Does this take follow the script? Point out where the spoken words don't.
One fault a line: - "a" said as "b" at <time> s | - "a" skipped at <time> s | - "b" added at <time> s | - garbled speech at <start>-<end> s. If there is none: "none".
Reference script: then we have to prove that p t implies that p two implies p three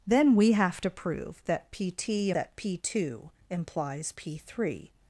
- "implies" skipped at 2.3 s